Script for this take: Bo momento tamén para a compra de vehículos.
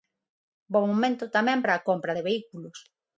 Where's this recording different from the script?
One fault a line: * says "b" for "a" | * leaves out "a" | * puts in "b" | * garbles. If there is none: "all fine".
all fine